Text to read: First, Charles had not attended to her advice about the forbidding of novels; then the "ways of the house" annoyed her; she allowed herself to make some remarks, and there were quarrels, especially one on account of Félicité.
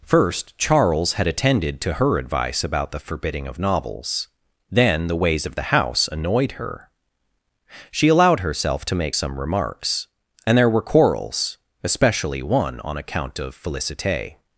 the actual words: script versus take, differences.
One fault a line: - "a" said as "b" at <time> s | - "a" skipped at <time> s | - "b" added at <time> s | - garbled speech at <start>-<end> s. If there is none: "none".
- "not" skipped at 1.3 s